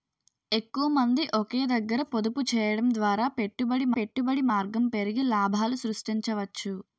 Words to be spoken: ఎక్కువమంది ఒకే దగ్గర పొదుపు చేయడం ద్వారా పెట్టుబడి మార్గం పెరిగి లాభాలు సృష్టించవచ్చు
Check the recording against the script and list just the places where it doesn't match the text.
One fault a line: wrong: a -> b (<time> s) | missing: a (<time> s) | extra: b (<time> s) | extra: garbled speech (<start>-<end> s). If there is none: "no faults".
extra: పెట్టుబడి (4.0 s)